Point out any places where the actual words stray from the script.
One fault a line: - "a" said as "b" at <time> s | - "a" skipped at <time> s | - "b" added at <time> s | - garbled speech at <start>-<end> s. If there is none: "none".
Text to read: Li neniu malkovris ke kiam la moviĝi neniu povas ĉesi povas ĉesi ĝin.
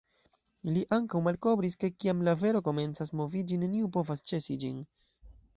- "neniu" said as "ankaŭ" at 1.0 s
- "vero komencas" added at 2.5 s
- "povas ĉesi" skipped at 4.6 s